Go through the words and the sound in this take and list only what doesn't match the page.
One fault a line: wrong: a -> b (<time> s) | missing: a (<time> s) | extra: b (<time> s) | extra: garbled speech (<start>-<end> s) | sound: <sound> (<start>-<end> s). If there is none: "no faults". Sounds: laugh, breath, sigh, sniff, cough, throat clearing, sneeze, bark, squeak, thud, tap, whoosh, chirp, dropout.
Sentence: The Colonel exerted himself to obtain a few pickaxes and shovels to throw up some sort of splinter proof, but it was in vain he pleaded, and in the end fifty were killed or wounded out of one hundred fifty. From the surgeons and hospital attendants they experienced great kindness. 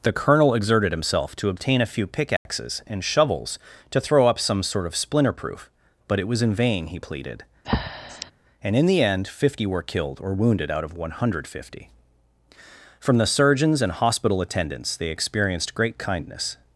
sound: dropout (2.4-2.5 s)
sound: breath (7.6-8.3 s)